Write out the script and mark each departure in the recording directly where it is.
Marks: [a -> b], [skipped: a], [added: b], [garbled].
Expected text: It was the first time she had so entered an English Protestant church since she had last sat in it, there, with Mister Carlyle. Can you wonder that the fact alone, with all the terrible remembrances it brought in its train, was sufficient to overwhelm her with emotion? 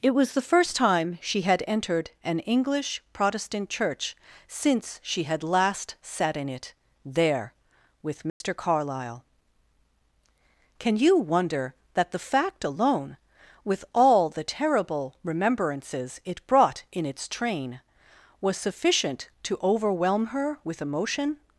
It was the first time she had [skipped: so] entered an English Protestant church since she had last sat in it, there, with Mister Carlyle. Can you wonder that the fact alone, with all the terrible remembrances it brought in its train, was sufficient to overwhelm her with emotion?